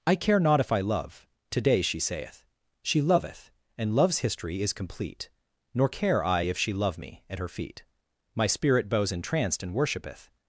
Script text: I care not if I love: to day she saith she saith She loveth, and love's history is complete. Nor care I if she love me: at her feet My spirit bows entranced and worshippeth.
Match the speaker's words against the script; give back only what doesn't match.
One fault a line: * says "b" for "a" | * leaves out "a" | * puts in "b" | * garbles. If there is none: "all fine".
* leaves out "saith She"